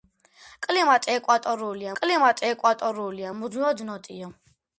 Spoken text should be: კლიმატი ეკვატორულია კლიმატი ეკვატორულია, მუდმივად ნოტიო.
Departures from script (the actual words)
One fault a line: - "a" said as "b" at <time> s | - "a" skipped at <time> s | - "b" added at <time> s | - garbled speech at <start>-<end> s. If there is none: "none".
none